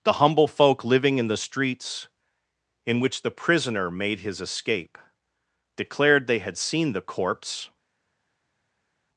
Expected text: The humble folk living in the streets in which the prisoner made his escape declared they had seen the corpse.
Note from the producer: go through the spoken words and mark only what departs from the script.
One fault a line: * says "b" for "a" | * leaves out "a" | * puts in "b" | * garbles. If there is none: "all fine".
all fine